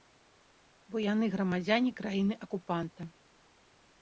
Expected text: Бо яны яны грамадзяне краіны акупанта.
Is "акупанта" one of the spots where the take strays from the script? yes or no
no